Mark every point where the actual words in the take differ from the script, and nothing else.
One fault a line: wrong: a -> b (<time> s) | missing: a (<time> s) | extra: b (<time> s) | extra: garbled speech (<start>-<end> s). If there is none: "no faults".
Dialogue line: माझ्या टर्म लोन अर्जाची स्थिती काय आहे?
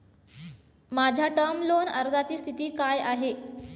no faults